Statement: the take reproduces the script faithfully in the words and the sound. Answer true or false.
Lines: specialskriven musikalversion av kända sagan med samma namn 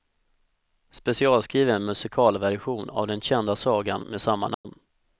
false